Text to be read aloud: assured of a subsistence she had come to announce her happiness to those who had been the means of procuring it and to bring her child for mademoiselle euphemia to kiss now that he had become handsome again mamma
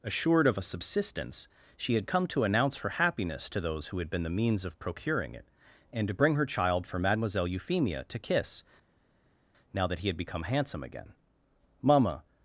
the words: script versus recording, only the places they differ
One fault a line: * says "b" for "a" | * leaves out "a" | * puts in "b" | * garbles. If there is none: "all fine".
all fine